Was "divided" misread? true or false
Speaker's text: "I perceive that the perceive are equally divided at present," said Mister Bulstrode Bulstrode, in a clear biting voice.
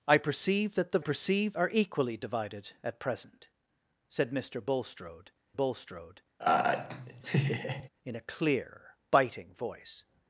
false